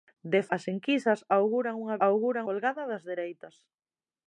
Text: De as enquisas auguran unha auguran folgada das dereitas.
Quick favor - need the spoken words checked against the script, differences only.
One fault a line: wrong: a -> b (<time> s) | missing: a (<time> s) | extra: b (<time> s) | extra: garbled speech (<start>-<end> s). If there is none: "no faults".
no faults